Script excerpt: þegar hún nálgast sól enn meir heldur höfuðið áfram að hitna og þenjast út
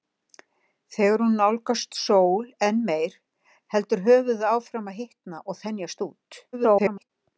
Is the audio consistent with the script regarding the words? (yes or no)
no